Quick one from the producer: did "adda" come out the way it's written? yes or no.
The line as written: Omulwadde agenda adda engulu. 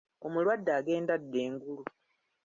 yes